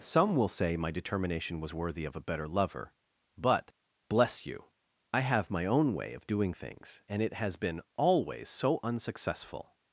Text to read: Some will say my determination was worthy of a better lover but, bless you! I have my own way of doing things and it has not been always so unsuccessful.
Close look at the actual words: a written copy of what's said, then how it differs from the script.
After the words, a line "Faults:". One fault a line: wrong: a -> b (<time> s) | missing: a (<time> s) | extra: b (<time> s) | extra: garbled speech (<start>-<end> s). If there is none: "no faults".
Some will say my determination was worthy of a better lover but, bless you! I have my own way of doing things and it has been always so unsuccessful.
Faults:
missing: not (7.6 s)